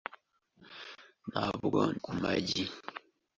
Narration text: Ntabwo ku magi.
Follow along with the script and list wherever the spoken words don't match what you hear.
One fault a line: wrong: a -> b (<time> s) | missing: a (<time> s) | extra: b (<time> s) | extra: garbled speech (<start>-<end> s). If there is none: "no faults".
no faults